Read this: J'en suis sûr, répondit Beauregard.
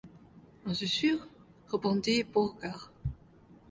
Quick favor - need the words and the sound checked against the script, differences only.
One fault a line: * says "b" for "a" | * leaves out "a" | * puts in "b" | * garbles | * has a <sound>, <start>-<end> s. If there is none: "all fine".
all fine